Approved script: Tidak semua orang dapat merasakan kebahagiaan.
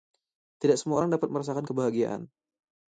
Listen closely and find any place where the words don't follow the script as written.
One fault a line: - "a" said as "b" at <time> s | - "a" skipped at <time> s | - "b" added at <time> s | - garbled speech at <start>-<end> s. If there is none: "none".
none